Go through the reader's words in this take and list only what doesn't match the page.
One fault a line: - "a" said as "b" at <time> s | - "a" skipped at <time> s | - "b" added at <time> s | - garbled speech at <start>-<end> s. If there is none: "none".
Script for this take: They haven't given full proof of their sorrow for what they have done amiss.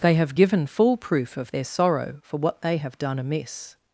- "haven't" said as "have" at 0.1 s